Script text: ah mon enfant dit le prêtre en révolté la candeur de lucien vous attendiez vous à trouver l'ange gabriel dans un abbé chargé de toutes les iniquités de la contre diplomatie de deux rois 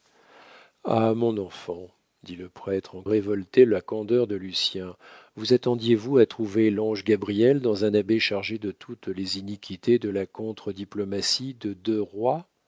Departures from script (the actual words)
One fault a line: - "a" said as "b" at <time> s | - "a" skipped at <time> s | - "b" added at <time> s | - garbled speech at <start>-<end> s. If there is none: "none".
none